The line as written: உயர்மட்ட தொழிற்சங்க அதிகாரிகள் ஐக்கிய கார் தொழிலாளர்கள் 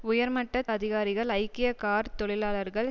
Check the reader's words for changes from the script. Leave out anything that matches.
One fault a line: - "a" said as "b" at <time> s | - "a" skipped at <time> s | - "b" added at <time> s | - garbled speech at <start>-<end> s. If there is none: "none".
- "தொழிற்சங்க" skipped at 0.6 s